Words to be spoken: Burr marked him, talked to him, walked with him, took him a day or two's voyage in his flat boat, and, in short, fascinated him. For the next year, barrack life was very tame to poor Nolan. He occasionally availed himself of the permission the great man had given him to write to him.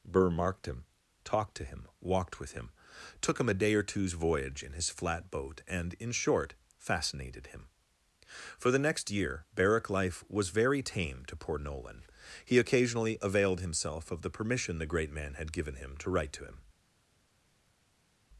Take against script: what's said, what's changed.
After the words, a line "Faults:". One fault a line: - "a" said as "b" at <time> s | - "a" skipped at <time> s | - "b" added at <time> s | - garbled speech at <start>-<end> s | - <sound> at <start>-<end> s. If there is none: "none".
Burr marked him, talked to him, walked with him, took him a day or two's voyage in his flat boat, and, in short, fascinated him. For the next year, barrack life was very tame to poor Nolan. He occasionally availed himself of the permission the great man had given him to write to him.
Faults:
none